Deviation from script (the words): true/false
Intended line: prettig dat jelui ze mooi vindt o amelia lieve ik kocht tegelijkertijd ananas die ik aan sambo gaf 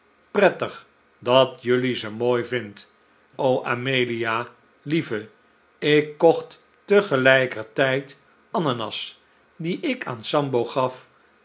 false